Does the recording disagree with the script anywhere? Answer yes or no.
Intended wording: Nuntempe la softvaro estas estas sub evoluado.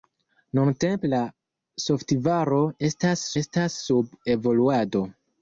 no